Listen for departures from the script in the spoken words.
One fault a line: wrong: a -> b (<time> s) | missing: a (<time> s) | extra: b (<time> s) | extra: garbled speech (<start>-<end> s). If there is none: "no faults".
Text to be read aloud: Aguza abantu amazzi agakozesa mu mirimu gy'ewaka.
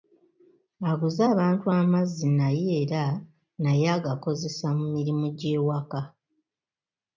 extra: naye era naye (2.4 s)